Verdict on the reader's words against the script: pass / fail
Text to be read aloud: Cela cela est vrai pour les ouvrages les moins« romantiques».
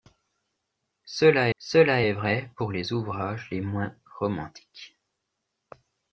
pass